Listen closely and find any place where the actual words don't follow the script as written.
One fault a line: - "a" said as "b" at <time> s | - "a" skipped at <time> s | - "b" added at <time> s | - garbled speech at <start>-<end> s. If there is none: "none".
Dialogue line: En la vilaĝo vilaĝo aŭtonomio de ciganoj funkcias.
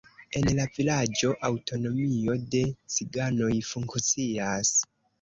- "vilaĝo" skipped at 1.3 s